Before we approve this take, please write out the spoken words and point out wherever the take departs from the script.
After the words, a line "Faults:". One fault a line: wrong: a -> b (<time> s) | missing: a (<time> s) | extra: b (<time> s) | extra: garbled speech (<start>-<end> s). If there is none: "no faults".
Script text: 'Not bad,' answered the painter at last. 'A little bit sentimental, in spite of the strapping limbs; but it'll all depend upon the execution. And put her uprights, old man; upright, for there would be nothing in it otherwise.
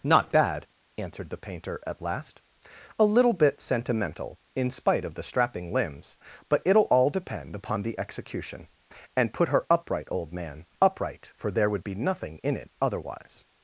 'Not bad,' answered the painter at last. 'A little bit sentimental, in spite of the strapping limbs; but it'll all depend upon the execution. And put her upright, old man; upright, for there would be nothing in it otherwise.
Faults:
wrong: uprights -> upright (9.7 s)